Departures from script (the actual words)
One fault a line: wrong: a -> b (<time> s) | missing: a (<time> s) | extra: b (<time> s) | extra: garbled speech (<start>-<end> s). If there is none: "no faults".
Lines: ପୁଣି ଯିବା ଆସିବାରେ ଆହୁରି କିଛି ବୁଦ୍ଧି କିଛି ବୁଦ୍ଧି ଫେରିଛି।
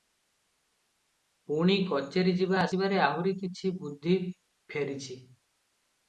extra: କଚେରି (1.9 s)
missing: କିଛି ବୁଦ୍ଧି (4.1 s)